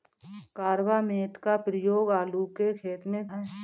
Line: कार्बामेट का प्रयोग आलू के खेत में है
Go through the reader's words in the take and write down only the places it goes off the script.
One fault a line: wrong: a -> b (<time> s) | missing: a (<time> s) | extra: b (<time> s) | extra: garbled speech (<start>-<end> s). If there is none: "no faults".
no faults